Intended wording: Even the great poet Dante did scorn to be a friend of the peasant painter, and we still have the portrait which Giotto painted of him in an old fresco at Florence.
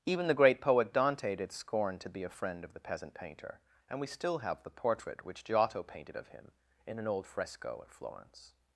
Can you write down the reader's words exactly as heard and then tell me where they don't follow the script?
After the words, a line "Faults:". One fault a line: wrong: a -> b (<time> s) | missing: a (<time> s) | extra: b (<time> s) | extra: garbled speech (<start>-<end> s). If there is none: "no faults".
Even the great poet Dante did scorn to be a friend of the peasant painter, and we still have the portrait which Giotto painted of him in an old fresco at Florence.
Faults:
no faults